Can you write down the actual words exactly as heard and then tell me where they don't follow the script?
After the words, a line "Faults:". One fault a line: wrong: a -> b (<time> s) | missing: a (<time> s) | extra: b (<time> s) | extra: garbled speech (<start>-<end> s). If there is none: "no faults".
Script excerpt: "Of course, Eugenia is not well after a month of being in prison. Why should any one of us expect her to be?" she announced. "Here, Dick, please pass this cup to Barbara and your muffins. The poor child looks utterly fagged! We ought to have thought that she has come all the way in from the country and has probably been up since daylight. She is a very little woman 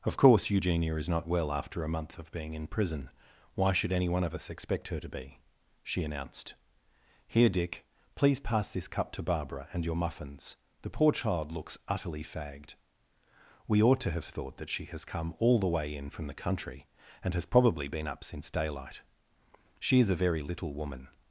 "Of course, Eugenia is not well after a month of being in prison. Why should any one of us expect her to be?" she announced. "Here, Dick, please pass this cup to Barbara and your muffins. The poor child looks utterly fagged! We ought to have thought that she has come all the way in from the country and has probably been up since daylight. She is a very little woman
Faults:
no faults